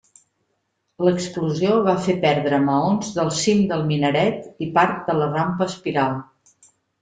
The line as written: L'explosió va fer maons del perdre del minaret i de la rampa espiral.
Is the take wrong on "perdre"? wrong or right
wrong